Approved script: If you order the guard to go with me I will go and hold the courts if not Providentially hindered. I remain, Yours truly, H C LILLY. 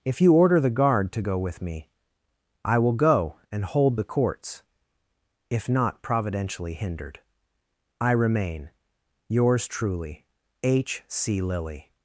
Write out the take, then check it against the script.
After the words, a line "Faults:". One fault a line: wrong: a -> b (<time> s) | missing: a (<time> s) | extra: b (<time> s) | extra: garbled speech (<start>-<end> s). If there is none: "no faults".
If you order the guard to go with me I will go and hold the courts if not Providentially hindered. I remain, Yours truly, H C LILLY.
Faults:
no faults